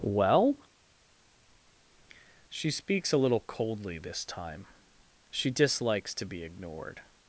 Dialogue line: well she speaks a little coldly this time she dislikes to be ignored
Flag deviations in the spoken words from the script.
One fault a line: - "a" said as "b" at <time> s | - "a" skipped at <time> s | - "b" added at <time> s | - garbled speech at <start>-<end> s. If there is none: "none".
none